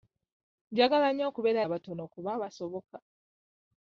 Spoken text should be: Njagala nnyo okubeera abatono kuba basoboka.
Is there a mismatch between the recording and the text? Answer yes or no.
no